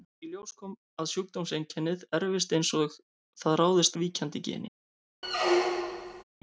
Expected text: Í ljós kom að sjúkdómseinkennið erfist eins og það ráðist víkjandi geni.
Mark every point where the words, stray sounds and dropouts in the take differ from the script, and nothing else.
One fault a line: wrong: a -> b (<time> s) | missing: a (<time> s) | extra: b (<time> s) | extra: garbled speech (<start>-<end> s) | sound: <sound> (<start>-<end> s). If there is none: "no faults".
sound: squeak (5.2-6.2 s)